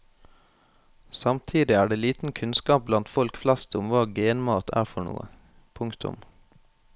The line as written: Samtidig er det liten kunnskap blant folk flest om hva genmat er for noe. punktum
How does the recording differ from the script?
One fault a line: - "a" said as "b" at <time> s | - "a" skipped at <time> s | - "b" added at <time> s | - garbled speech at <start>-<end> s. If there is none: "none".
none